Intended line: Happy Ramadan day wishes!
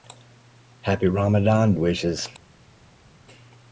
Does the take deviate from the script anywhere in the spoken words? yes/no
yes